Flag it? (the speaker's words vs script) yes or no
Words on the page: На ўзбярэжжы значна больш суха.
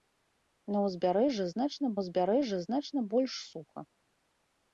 yes